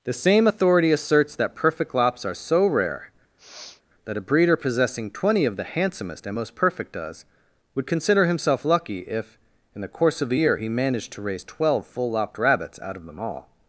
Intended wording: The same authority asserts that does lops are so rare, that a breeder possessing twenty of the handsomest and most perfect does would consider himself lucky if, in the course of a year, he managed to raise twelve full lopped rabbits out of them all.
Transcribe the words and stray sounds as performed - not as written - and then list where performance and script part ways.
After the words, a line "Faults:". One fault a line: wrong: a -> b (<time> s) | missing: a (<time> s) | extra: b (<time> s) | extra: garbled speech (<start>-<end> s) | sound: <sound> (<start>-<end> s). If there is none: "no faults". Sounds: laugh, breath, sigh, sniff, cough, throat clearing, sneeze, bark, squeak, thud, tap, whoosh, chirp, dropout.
The same authority asserts that perfect lops are so rare, that a breeder possessing twenty of the handsomest and most perfect does would consider himself lucky if, in the course of a year, he managed to raise twelve full lopped rabbits out of them all.
Faults:
wrong: does -> perfect (1.6 s)
sound: sniff (3.4-3.8 s)